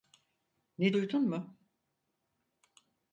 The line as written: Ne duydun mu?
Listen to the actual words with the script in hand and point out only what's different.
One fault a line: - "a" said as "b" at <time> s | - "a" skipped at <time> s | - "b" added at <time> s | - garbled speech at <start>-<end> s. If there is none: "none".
none